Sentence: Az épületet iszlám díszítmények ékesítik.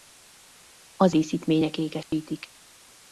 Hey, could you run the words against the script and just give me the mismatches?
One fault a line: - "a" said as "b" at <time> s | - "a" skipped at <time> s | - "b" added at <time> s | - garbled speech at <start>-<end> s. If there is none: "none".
- "épületet iszlám" skipped at 1.1 s